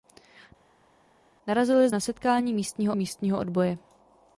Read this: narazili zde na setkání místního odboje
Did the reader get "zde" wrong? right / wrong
wrong